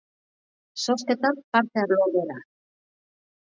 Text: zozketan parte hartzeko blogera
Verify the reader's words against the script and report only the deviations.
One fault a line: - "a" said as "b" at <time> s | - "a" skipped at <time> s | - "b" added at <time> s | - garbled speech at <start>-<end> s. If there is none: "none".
- "hartzeko" skipped at 1.8 s